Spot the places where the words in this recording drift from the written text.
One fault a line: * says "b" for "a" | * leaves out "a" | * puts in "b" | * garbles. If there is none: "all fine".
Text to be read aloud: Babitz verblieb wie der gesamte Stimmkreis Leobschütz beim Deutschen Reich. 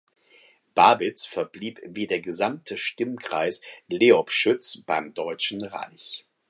all fine